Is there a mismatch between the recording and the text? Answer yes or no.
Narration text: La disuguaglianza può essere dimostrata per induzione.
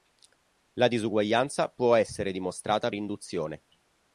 yes